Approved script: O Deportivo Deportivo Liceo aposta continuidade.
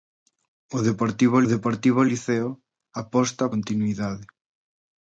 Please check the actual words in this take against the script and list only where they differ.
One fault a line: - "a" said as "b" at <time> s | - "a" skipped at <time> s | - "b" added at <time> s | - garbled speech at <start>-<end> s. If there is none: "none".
none